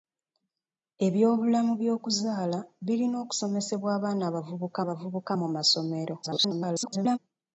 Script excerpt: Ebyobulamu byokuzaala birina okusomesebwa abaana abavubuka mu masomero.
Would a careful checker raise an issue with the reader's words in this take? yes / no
yes